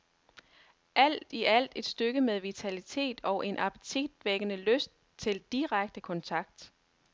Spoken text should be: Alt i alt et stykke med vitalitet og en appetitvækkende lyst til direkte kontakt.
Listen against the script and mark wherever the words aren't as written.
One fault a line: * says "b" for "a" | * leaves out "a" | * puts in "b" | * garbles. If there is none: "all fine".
all fine